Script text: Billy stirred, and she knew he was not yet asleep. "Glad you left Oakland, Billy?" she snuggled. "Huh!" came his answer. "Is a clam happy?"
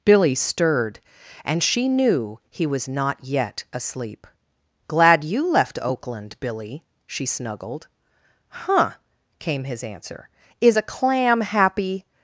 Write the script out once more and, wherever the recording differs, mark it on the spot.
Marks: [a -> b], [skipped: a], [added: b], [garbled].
Billy stirred, and she knew he was not yet asleep. "Glad you left Oakland, Billy?" she snuggled. "Huh!" came his answer. "Is a clam happy?"